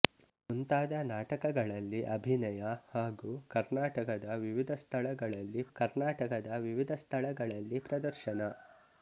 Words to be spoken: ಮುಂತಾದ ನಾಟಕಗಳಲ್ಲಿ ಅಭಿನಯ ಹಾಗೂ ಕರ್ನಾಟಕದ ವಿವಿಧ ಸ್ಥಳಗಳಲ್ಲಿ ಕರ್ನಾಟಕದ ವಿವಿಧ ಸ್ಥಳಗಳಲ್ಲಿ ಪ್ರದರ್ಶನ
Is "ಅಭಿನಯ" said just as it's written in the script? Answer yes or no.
yes